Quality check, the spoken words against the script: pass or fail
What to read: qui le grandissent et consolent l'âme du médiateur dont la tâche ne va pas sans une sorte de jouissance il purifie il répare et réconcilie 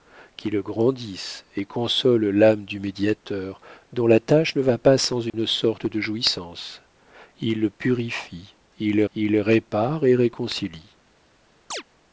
fail